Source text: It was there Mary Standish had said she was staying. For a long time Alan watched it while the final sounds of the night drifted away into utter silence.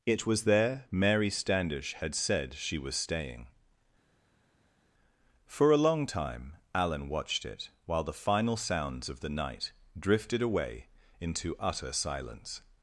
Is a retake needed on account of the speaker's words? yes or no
no